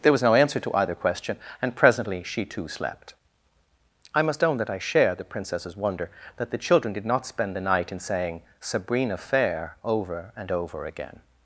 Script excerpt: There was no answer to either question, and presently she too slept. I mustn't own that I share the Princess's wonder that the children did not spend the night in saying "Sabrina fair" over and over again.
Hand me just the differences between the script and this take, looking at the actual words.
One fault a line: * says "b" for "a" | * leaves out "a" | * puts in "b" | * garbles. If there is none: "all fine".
* says "must" for "mustn't"